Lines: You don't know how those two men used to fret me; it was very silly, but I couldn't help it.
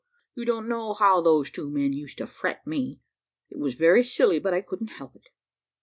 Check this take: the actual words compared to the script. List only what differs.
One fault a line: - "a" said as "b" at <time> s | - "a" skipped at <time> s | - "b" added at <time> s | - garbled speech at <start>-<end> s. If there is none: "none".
none